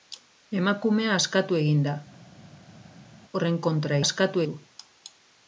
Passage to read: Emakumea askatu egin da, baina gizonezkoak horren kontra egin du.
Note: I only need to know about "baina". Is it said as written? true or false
false